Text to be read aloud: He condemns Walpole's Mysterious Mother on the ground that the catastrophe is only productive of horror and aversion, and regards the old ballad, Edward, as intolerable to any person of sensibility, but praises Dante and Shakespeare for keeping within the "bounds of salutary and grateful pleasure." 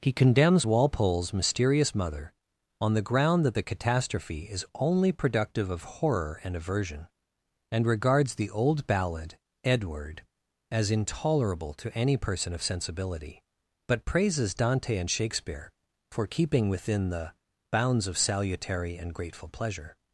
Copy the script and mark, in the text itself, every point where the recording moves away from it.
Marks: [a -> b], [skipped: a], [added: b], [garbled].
He condemns Walpole's Mysterious Mother on the ground that the catastrophe is only productive of horror and aversion, and regards the old ballad, Edward, as intolerable to any person of sensibility, but praises Dante and Shakespeare for keeping within the "bounds of salutary and grateful pleasure."